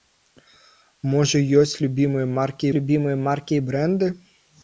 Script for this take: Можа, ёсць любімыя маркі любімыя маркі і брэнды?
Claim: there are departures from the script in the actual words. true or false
false